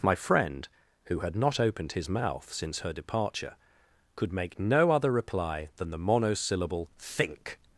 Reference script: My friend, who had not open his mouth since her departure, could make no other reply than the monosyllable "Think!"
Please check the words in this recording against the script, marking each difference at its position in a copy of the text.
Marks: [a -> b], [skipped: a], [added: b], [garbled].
My friend, who had not [open -> opened] his mouth since her departure, could make no other reply than the monosyllable "Think!"